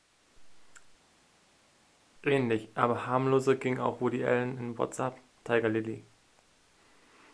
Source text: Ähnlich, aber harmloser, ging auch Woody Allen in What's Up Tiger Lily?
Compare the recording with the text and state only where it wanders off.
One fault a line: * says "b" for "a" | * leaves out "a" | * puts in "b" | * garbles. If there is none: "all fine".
all fine